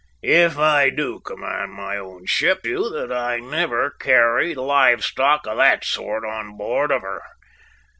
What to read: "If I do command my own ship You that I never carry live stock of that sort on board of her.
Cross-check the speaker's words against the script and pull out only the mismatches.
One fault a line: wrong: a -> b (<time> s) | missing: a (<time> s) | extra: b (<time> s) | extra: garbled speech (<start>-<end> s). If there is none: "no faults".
no faults